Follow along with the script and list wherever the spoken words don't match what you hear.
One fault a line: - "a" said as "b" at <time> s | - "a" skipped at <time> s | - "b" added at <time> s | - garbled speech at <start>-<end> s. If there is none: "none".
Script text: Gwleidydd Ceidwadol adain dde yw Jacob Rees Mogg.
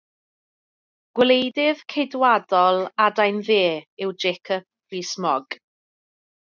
none